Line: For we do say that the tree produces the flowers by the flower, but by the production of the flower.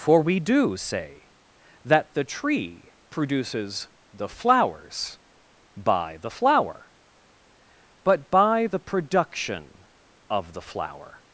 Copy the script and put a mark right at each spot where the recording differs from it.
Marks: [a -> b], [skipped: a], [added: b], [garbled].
For we do say that the tree produces the flowers by the flower, but by the production of the flower.